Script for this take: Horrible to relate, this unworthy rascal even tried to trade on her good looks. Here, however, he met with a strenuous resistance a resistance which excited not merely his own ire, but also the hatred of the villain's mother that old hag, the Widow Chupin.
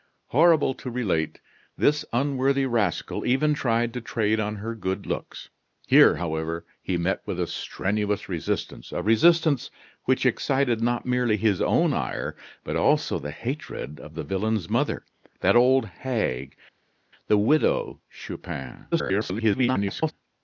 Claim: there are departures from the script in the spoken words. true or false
true